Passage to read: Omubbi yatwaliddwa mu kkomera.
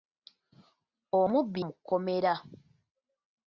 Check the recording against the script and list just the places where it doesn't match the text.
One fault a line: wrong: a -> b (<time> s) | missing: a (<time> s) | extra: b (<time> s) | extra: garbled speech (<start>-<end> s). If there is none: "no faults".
missing: yatwaliddwa (1.6 s)